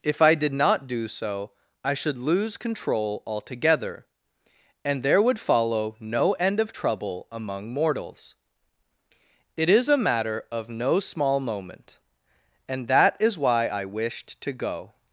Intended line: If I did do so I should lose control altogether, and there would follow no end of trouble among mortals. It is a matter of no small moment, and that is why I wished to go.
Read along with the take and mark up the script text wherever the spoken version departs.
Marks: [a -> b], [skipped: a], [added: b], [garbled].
If I did [added: not] do so I should lose control altogether, and there would follow no end of trouble among mortals. It is a matter of no small moment, and that is why I wished to go.